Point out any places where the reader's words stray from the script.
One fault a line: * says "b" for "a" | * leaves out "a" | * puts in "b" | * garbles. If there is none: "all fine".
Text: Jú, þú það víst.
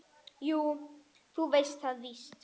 * puts in "veist"